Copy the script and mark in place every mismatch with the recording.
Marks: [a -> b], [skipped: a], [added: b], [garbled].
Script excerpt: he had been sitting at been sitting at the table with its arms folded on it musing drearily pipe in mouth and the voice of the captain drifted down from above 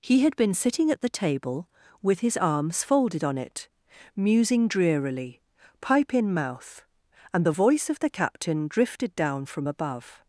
he had been sitting at [skipped: been sitting at] the table with [its -> his] arms folded on it musing drearily pipe in mouth and the voice of the captain drifted down from above